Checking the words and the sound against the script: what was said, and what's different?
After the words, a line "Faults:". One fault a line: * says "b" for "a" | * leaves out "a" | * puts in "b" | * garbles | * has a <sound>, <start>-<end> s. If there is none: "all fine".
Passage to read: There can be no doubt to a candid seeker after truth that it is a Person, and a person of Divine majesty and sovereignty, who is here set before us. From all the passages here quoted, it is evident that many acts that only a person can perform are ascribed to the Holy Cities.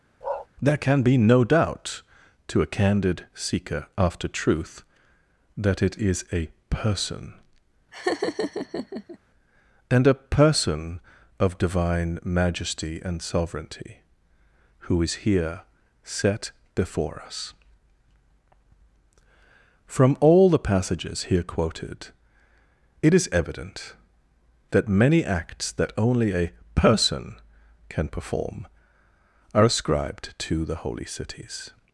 There can be no doubt to a candid seeker after truth that it is a Person, and a person of Divine majesty and sovereignty, who is here set before us. From all the passages here quoted, it is evident that many acts that only a person can perform are ascribed to the Holy Cities.
Faults:
* has a bark, 0.2-0.5 s
* has a laugh, 7.9-9.2 s